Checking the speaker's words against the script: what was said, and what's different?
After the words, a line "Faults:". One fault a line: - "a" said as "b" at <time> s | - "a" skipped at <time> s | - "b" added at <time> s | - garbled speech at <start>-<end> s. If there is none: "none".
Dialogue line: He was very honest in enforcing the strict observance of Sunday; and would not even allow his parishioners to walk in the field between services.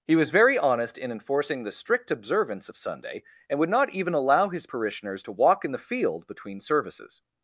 He was very honest in enforcing the strict observance of Sunday; and would not even allow his parishioners to walk in the field between services.
Faults:
none